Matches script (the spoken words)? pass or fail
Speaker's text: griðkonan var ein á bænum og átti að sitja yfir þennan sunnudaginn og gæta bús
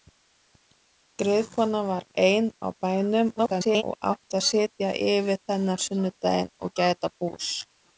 fail